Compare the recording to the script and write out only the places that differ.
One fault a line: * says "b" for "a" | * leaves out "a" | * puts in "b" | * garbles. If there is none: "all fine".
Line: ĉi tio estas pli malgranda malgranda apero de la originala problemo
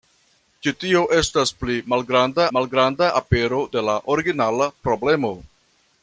all fine